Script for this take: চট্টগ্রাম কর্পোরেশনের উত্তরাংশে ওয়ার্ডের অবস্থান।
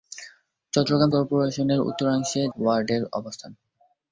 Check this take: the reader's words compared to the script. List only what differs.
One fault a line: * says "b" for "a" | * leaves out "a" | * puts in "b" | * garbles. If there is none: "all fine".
all fine